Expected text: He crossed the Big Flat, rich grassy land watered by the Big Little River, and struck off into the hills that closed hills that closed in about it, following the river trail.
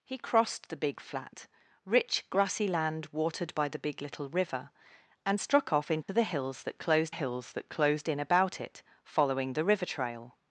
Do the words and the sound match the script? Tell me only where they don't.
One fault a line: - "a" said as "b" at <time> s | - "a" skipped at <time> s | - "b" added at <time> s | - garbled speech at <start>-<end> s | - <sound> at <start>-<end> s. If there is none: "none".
- dropout at 6.0-6.1 s